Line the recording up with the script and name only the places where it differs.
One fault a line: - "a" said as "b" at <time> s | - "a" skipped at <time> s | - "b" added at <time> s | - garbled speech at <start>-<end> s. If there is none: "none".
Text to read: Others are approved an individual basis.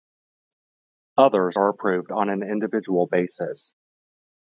- "on" added at 2.1 s